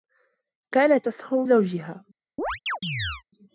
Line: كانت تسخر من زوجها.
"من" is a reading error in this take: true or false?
true